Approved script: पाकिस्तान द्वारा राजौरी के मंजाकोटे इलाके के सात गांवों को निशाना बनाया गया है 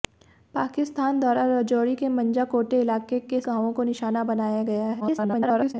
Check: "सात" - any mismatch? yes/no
yes